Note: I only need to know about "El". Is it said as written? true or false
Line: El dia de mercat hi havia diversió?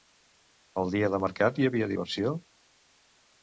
true